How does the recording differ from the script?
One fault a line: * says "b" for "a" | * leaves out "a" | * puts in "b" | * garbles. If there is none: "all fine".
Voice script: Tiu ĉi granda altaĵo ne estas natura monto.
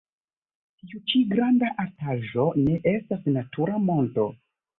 all fine